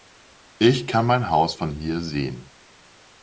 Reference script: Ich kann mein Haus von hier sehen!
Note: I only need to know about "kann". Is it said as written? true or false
true